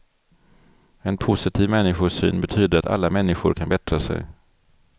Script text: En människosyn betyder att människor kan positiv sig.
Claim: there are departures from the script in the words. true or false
true